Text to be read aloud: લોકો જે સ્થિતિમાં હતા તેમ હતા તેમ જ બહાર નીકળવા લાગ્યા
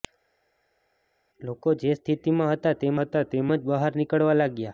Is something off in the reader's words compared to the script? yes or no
no